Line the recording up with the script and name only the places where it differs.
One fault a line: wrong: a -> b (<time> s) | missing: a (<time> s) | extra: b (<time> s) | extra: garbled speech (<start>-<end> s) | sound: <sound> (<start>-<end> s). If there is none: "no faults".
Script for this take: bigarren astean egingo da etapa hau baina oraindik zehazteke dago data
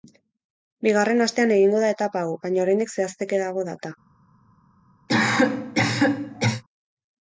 sound: cough (5.1-6.6 s)